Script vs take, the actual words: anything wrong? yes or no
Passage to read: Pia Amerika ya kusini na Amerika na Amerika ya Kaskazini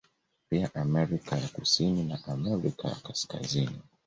yes